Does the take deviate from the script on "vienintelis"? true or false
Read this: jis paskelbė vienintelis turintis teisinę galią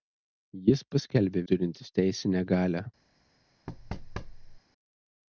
true